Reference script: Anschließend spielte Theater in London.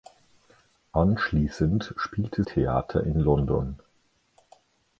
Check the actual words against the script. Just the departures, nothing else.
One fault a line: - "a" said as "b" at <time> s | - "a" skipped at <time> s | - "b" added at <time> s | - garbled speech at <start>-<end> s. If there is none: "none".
none